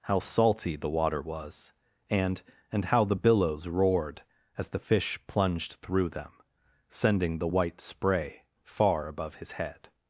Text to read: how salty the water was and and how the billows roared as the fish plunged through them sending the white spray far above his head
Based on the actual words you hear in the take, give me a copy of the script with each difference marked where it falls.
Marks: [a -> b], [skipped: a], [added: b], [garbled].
how salty the water was and and how the billows roared as the fish plunged through them sending the white spray far above his head